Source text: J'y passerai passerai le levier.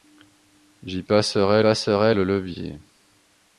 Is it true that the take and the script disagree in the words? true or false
false